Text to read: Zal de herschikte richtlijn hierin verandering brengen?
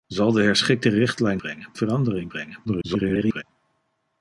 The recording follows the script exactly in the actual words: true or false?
false